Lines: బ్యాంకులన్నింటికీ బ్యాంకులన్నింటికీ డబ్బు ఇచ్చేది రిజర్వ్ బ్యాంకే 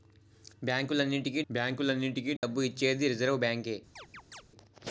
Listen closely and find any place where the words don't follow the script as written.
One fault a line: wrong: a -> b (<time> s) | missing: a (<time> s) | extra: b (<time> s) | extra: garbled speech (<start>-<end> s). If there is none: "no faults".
no faults